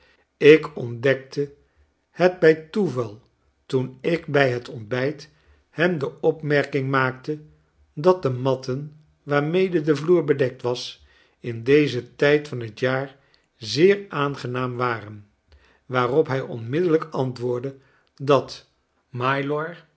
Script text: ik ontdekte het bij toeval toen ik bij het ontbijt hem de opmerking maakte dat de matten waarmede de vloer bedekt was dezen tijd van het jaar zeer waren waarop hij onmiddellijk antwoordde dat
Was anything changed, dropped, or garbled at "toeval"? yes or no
no